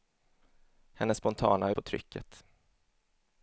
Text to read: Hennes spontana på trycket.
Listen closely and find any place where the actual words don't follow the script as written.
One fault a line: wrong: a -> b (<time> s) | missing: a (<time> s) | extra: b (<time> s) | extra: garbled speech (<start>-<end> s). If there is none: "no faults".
no faults